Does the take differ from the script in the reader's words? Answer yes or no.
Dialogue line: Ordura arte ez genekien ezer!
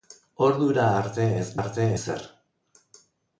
yes